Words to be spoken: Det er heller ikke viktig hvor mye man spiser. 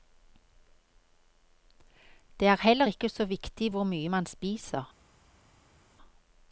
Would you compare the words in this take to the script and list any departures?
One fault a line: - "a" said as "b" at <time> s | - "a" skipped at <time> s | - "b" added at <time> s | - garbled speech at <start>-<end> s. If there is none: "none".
- "så" added at 3.1 s